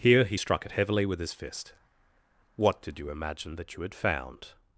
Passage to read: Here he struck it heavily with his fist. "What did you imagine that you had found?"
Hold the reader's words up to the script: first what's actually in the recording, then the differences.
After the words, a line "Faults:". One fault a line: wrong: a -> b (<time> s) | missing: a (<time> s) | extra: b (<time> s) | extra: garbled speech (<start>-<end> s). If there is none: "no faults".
Here he struck it heavily with his fist. "What did you imagine that you had found?"
Faults:
no faults